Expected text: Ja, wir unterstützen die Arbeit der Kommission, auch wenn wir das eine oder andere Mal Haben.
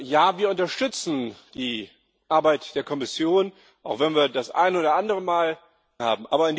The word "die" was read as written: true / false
true